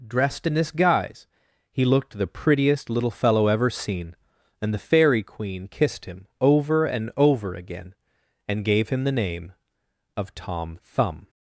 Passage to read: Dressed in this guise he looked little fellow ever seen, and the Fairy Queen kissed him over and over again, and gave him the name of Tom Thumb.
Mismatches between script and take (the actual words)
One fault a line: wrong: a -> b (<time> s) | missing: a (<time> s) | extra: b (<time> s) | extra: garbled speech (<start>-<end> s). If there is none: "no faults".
extra: the prettiest (2.2 s)